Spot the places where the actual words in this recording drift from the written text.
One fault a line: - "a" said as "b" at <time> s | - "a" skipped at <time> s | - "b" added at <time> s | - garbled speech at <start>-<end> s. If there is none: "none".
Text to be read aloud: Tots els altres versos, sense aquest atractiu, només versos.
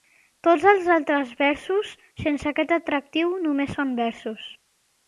- "són" added at 3.8 s